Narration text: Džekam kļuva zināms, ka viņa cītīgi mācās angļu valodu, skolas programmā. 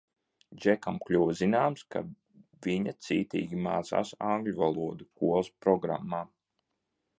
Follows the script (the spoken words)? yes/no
yes